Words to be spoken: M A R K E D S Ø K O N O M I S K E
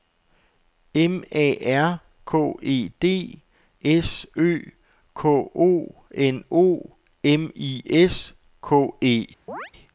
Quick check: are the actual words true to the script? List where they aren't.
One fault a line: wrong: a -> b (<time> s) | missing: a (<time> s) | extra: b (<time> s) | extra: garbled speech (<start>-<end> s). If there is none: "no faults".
no faults